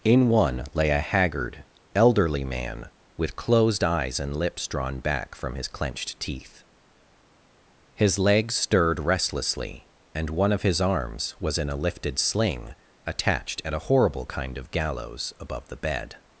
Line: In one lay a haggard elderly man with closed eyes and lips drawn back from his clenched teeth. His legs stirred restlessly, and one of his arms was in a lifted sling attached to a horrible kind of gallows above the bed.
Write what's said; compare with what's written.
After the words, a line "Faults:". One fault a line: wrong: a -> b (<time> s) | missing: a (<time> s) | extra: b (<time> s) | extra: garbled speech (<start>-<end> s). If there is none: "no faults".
In one lay a haggard elderly man with closed eyes and lips drawn back from his clenched teeth. His legs stirred restlessly, and one of his arms was in a lifted sling attached at a horrible kind of gallows above the bed.
Faults:
wrong: to -> at (13.6 s)